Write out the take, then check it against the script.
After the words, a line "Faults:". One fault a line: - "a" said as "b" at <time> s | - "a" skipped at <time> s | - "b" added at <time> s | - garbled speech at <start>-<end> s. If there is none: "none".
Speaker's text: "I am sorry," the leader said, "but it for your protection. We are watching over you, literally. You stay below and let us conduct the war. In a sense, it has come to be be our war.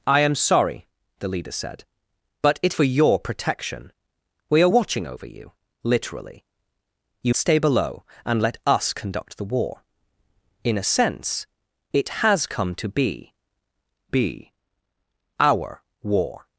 "I am sorry," the leader said, "but it for your protection. We are watching over you, literally. You stay below and let us conduct the war. In a sense, it has come to be be our war.
Faults:
none